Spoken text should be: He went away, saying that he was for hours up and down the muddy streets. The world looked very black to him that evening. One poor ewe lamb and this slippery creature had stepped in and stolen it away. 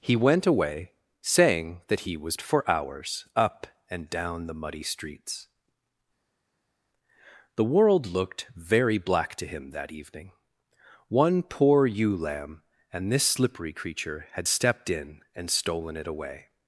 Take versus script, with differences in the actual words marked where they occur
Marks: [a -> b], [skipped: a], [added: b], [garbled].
He went away, saying that he was for hours up and down the muddy streets. The world looked very black to him that evening. One poor ewe lamb and this slippery creature had stepped in and stolen it away.